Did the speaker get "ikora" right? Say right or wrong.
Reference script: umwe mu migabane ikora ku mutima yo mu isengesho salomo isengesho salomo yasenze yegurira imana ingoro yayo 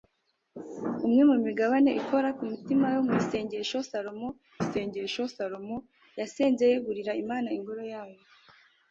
right